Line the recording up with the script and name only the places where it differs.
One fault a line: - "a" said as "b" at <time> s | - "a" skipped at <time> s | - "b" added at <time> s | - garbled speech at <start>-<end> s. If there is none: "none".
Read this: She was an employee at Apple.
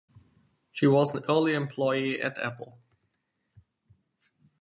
- "early" added at 1.3 s